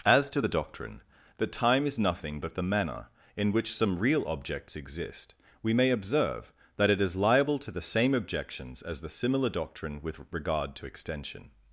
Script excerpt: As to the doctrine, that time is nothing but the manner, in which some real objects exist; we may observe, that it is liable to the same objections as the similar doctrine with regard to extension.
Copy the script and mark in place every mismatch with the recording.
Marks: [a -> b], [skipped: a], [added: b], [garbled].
As to the doctrine, that time is nothing but the manner, in which some real objects exist; we may observe, that it is liable to the same objections as the similar doctrine with regard to extension.